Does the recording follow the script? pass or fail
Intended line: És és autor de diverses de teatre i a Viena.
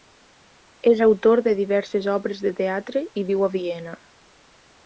fail